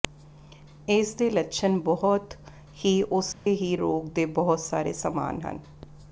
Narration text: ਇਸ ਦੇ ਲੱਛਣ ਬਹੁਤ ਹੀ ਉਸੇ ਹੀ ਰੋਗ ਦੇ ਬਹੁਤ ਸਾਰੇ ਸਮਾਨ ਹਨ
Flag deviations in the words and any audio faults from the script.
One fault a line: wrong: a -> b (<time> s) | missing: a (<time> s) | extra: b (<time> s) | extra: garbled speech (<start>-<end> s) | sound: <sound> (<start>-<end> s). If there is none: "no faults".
sound: dropout (3.3-3.5 s)